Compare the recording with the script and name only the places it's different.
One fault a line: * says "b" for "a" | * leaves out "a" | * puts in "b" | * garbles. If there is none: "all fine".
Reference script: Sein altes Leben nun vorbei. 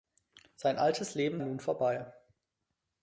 all fine